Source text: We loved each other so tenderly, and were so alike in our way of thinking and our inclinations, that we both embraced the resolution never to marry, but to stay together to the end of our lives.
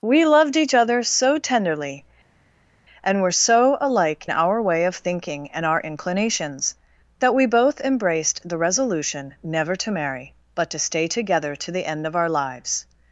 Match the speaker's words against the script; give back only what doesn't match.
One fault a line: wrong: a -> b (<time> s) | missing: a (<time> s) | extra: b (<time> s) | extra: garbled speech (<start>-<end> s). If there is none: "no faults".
missing: in (4.3 s)